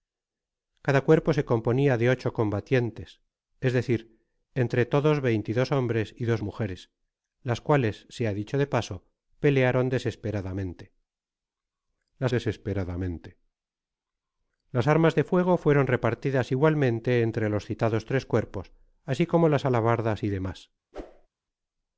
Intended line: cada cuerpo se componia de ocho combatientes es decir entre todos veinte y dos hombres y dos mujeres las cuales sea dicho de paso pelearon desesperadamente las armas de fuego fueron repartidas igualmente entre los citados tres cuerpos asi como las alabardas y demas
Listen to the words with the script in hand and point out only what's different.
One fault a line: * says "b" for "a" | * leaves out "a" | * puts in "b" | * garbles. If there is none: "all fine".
* puts in "desesperadamente las"